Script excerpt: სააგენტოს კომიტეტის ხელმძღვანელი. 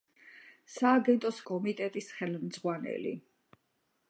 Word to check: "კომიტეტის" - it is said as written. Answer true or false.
true